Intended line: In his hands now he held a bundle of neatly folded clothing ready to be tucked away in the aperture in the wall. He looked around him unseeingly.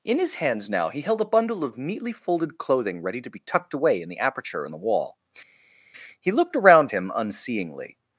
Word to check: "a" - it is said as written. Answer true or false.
true